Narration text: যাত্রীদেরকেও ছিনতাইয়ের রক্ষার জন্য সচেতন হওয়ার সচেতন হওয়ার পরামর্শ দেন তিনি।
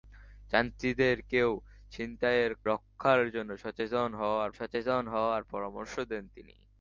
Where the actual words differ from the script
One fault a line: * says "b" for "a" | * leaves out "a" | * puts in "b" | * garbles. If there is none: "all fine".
all fine